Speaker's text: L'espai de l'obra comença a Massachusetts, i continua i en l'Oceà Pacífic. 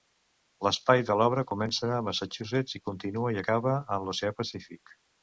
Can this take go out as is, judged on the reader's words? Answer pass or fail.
fail